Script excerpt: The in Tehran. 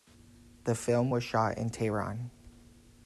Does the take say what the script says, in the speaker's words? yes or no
no